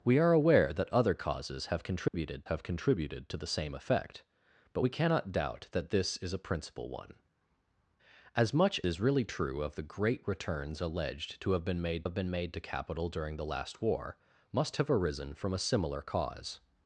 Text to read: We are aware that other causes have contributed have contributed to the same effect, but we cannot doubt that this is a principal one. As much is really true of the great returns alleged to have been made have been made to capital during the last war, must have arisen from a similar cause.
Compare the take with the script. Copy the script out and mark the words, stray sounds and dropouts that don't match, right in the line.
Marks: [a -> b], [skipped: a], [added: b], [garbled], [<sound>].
We are aware that other causes have contributed [dropout] have contributed to the same effect, but we cannot doubt that this is a principal one. As much is really true of the great returns alleged to have been made have been made to capital during the last war, must have arisen from a similar cause.